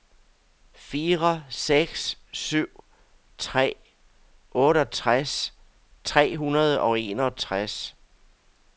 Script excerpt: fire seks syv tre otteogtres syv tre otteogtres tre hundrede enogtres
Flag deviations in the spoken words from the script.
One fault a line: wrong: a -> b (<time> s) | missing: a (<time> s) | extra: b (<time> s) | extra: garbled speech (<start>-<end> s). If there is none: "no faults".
missing: syv (5.5 s)
wrong: otteogtres tre hundrede -> hundrede og (6.4 s)